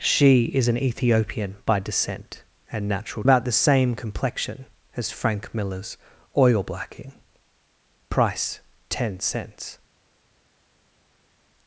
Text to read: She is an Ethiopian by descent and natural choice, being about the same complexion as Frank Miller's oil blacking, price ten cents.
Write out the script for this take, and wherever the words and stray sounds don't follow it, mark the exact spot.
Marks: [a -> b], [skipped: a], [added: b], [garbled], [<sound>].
She is an Ethiopian by descent and natural [skipped: choice, being] about the same complexion as Frank Miller's oil blacking, price ten cents.